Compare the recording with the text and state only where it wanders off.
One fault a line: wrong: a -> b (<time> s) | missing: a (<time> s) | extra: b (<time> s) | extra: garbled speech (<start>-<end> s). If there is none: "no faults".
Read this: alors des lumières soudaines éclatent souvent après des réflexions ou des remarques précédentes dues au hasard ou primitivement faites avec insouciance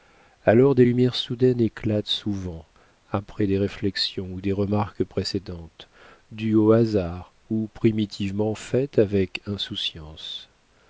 no faults